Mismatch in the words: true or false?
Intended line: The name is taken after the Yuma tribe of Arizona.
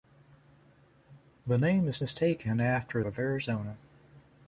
true